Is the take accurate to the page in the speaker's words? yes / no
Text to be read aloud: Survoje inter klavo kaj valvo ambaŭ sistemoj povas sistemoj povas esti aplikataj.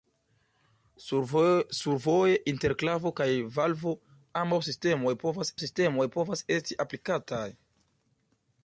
yes